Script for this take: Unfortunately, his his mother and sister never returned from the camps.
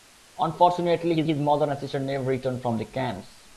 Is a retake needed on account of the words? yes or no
no